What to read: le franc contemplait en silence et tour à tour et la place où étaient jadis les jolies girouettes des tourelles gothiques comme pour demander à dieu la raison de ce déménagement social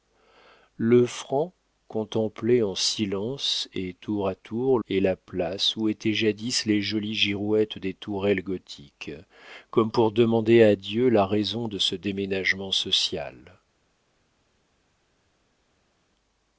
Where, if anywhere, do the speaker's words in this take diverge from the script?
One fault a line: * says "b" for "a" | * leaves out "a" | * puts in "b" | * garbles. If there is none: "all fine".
all fine